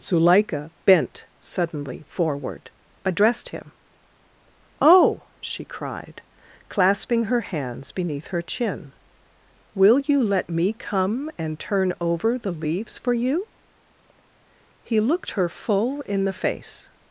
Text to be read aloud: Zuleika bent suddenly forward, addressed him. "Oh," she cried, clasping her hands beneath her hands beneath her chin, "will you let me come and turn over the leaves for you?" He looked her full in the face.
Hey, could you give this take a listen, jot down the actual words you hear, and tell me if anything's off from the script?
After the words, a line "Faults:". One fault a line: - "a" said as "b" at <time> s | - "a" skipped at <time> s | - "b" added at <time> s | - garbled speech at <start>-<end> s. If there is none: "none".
Zuleika bent suddenly forward, addressed him. "Oh," she cried, clasping her hands beneath her chin, "will you let me come and turn over the leaves for you?" He looked her full in the face.
Faults:
- "hands beneath her" skipped at 8.4 s